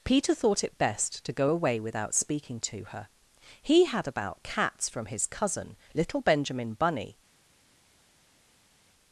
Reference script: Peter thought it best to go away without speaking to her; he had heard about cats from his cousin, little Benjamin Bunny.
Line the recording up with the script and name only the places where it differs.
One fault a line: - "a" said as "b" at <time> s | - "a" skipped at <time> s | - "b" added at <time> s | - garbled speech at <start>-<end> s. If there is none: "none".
- "heard" skipped at 4.1 s